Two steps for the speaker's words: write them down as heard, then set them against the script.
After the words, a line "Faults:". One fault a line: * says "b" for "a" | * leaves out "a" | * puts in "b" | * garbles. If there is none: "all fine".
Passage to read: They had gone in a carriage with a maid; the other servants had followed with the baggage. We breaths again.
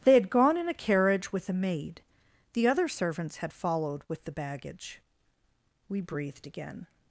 They had gone in a carriage with a maid; the other servants had followed with the baggage. We breathed again.
Faults:
* says "breathed" for "breaths"